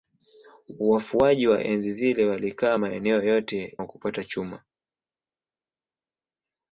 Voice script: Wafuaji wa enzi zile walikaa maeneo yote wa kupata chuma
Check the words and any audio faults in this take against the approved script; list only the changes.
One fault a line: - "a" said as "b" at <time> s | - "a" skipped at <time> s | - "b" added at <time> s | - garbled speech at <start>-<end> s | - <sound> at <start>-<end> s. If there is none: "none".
none